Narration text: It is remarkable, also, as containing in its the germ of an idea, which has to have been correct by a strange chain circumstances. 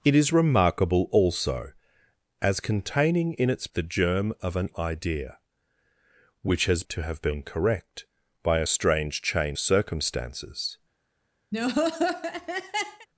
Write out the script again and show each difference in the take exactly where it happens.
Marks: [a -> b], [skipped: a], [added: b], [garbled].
It is remarkable, also, as containing in its the germ of an idea, which has to have been correct by a strange chain circumstances.